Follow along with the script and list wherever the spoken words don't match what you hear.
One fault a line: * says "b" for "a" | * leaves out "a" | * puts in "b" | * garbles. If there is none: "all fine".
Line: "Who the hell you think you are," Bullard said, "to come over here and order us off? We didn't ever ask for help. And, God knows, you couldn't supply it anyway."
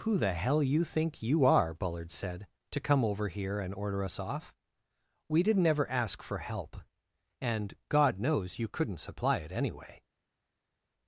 all fine